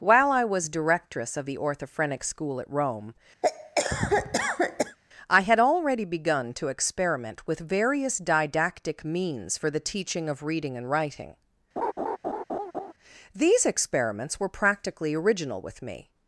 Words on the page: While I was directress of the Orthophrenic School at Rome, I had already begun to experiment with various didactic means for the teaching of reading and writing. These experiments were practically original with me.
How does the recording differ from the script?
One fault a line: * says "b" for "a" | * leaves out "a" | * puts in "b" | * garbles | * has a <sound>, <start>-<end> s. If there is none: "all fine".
* has a cough, 3.4-5.0 s
* has a laugh, 11.8-12.9 s